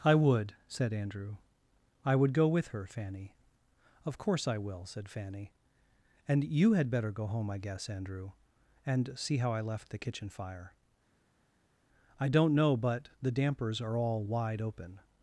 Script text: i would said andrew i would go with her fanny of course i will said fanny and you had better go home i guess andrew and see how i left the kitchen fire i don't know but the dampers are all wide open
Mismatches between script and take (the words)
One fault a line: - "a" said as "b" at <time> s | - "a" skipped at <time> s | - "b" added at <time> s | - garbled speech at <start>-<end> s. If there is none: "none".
none